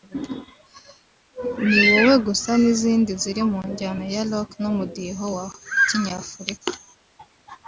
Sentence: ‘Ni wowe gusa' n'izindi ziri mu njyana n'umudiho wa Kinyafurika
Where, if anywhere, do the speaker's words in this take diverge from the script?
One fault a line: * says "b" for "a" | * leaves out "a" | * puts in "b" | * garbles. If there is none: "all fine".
* puts in "ya Rock"